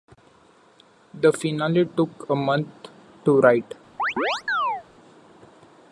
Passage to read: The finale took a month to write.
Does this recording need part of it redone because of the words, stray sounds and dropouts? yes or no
yes